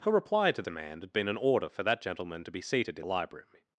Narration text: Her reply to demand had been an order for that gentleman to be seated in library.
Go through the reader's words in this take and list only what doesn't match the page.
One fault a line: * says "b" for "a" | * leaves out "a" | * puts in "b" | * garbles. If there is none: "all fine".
all fine